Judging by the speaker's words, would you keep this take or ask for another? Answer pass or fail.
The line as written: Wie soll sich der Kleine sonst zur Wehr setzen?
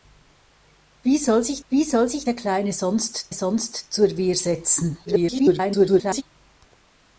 fail